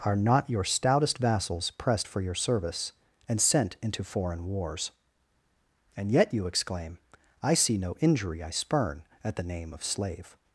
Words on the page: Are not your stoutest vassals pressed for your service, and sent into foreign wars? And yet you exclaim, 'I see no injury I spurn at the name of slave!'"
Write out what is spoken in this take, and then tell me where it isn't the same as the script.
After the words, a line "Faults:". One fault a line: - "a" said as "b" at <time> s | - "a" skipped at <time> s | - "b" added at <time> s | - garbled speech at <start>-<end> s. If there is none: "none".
Are not your stoutest vassals pressed for your service, and sent into foreign wars? And yet you exclaim, 'I see no injury I spurn at the name of slave!'"
Faults:
none